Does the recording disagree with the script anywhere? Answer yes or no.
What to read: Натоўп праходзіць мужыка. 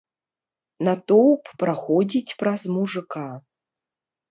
yes